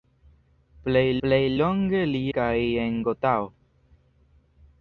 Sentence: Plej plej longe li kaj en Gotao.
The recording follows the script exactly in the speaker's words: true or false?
true